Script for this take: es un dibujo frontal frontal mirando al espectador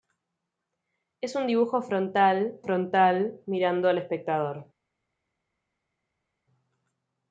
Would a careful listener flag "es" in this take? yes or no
no